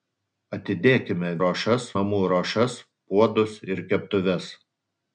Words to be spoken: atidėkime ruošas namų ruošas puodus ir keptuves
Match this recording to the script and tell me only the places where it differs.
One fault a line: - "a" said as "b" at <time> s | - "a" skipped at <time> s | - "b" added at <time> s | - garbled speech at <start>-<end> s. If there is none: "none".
none